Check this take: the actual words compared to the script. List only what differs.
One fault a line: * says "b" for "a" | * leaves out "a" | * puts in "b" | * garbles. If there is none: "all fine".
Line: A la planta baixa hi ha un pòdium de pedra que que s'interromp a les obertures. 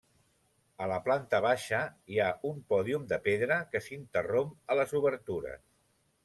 * leaves out "que"